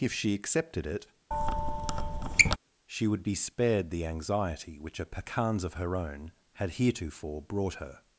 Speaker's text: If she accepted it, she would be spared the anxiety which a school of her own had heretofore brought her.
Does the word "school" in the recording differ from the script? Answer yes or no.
yes